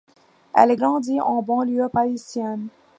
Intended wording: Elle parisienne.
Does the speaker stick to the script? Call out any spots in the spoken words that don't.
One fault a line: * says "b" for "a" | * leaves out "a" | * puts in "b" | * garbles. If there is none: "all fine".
* puts in "grandit en banlieue"